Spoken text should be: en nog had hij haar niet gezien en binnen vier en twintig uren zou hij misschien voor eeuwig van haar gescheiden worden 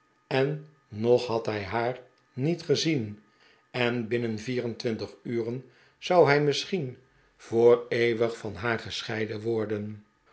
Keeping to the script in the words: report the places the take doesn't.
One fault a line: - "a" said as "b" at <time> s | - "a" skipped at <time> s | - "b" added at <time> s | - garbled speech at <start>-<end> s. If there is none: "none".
none